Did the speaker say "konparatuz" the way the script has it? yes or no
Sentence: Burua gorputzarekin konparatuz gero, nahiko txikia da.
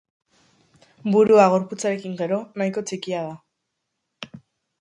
no